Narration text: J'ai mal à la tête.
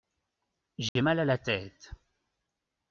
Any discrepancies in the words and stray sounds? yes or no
yes